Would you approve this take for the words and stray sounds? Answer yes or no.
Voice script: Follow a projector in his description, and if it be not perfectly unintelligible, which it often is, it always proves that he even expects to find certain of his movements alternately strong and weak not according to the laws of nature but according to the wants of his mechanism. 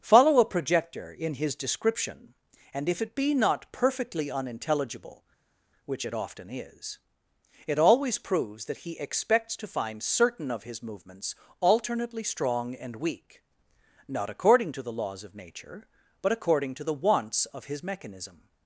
no